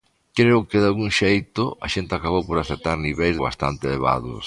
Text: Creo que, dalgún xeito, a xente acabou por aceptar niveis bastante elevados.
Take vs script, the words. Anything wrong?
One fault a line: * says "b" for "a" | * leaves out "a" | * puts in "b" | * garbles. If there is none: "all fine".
all fine